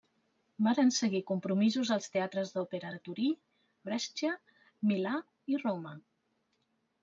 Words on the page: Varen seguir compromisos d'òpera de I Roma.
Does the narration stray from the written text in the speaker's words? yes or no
yes